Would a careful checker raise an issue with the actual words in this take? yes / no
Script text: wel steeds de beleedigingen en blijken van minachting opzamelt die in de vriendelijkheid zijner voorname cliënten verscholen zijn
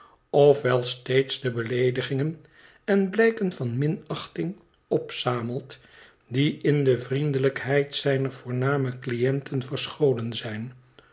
no